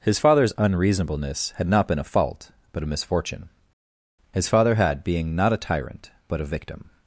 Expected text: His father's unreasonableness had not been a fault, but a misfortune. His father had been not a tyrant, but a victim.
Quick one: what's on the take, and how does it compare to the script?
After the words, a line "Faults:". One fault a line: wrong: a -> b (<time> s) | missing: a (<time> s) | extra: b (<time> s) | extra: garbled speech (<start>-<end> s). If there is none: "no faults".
His father's unreasonableness had not been a fault, but a misfortune. His father had being not a tyrant, but a victim.
Faults:
wrong: been -> being (5.0 s)